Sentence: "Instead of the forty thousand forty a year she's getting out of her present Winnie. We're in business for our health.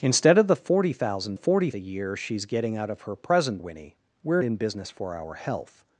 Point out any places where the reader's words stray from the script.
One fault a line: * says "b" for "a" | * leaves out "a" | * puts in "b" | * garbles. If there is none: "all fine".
all fine